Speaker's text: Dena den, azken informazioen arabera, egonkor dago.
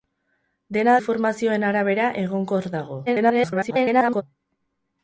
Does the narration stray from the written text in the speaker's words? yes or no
yes